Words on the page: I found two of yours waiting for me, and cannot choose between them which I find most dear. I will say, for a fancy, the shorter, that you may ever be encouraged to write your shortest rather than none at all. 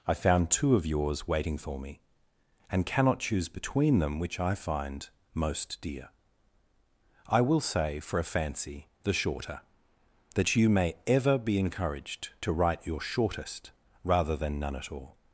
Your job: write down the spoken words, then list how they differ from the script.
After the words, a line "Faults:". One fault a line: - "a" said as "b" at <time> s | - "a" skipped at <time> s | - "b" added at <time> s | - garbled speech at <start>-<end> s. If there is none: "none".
I found two of yours waiting for me, and cannot choose between them which I find most dear. I will say, for a fancy, the shorter, that you may ever be encouraged to write your shortest rather than none at all.
Faults:
none